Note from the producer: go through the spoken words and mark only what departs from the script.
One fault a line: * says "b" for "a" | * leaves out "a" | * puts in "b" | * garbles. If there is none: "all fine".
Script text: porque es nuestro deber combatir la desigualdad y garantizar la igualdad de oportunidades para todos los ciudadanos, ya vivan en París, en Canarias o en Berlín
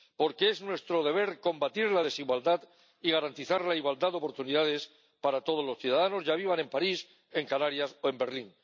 all fine